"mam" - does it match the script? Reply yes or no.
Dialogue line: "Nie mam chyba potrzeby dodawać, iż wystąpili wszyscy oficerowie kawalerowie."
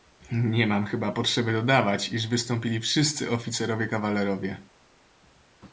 yes